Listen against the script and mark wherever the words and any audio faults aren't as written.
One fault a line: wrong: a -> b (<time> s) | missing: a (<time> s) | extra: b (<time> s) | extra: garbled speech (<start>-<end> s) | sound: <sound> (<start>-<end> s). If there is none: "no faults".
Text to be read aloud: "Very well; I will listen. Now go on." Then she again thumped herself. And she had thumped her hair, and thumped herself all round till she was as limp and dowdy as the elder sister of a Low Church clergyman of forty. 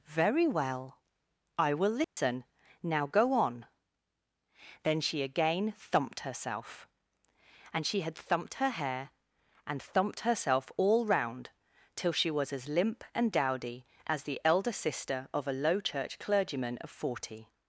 sound: dropout (2.0-2.2 s)